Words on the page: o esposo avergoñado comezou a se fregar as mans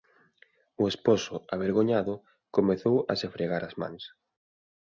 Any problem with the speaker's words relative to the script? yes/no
no